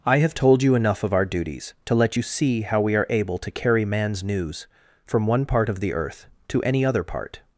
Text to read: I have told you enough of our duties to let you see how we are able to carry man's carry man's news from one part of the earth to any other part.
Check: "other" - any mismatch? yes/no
no